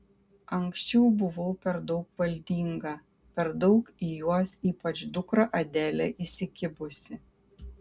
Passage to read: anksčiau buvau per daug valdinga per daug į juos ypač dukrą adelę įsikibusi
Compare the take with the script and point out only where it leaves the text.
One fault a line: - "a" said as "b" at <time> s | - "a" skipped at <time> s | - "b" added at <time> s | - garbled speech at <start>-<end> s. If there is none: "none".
none